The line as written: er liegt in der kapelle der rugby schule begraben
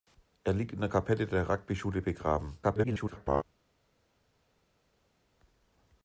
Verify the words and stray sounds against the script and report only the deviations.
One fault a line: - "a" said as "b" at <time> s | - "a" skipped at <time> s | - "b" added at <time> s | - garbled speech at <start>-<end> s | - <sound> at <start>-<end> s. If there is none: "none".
- garbled speech at 2.6-3.4 s